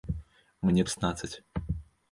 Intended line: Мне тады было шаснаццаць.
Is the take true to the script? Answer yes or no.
no